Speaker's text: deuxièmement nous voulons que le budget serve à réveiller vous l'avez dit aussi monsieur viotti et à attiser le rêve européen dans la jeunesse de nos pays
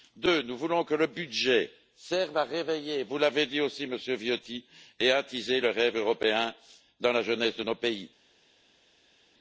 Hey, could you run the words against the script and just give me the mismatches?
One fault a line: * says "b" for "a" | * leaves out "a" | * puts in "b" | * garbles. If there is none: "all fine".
all fine